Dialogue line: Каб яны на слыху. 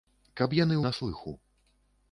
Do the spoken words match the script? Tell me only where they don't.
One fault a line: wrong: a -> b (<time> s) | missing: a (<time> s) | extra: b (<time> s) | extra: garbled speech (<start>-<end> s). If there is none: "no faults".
no faults